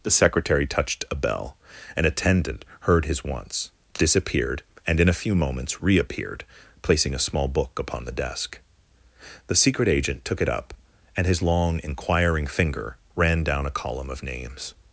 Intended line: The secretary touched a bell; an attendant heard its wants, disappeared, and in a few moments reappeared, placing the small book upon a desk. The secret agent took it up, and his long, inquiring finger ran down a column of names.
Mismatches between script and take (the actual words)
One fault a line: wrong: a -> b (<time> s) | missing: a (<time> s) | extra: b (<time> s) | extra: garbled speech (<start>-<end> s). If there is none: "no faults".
wrong: its -> his (3.0 s)
wrong: the -> a (7.1 s)
wrong: a -> the (8.1 s)